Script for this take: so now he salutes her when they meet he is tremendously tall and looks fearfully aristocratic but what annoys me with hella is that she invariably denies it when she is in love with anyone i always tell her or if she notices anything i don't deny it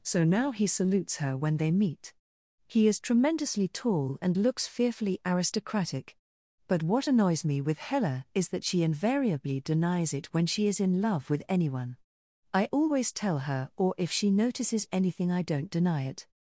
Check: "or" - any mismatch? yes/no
no